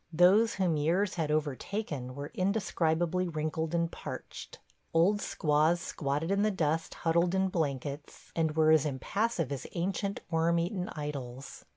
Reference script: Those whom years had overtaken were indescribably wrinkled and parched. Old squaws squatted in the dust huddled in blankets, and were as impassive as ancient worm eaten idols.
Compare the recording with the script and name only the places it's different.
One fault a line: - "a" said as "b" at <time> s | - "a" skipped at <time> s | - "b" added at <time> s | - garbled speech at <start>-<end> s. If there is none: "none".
none